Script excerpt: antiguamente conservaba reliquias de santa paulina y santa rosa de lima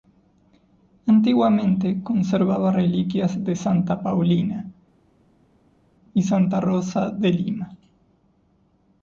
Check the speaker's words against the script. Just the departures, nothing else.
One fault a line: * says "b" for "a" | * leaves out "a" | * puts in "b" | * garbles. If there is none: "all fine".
all fine